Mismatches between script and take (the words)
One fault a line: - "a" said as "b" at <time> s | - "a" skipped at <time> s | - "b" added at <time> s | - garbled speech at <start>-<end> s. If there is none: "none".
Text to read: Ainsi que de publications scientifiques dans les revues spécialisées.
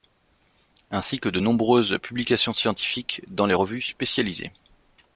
- "nombreuses" added at 1.4 s